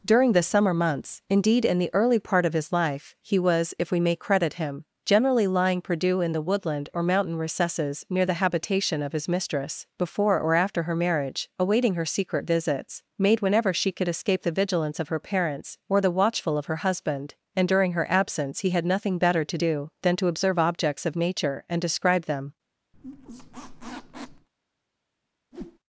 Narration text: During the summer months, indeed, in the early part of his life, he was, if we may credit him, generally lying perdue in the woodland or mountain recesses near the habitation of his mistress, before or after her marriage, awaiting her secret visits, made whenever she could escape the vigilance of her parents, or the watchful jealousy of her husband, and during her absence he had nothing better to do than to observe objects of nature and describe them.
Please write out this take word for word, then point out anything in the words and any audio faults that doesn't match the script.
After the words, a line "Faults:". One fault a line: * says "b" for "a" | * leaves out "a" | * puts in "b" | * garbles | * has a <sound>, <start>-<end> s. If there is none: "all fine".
During the summer months, indeed, in the early part of his life, he was, if we may credit him, generally lying perdue in the woodland or mountain recesses near the habitation of his mistress, before or after her marriage, awaiting her secret visits, made whenever she could escape the vigilance of her parents, or the watchful of her husband, and during her absence he had nothing better to do than to observe objects of nature and describe them.
Faults:
* leaves out "jealousy"
* has a squeak, 22.9-24.5 s
* has a whoosh, 25.5-25.8 s